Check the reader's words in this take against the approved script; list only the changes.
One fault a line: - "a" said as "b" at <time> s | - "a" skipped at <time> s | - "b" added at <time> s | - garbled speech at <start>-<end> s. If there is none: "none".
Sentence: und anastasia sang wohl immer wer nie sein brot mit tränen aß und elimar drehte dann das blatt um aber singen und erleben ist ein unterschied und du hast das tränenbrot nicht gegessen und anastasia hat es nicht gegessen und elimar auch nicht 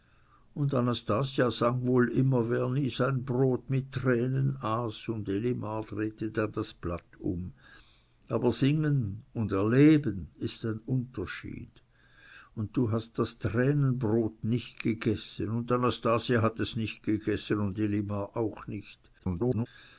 - garbled speech at 19.2-19.7 s